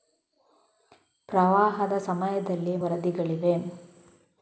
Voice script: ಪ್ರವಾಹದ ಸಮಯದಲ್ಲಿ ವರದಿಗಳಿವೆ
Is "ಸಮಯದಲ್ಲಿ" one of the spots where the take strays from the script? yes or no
no